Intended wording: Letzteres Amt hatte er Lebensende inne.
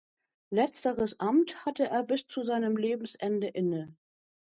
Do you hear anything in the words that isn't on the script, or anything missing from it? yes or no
yes